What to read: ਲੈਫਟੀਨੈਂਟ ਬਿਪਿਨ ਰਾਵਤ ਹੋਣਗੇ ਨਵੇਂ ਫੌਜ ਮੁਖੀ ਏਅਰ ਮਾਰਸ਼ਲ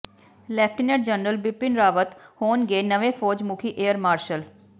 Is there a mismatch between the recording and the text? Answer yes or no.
yes